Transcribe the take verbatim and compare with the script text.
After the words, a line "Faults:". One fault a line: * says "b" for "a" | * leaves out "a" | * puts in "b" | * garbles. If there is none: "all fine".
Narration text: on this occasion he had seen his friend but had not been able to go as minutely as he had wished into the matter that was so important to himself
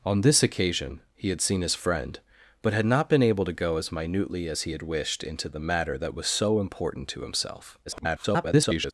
on this occasion he had seen his friend but had not been able to go as minutely as he had wished into the matter that was so important to himself [garbled]
Faults:
* garbles